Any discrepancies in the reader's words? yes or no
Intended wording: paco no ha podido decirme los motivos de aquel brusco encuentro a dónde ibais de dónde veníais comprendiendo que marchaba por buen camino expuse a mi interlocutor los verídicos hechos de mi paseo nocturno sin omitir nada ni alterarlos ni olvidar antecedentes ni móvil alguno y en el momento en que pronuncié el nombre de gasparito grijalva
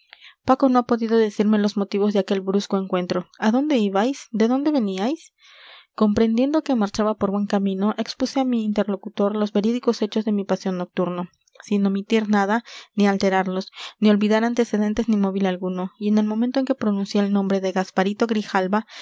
no